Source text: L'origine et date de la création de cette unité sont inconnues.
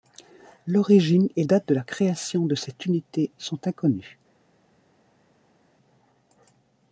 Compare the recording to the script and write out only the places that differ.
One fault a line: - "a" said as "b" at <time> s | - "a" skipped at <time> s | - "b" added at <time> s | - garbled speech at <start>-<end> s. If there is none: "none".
none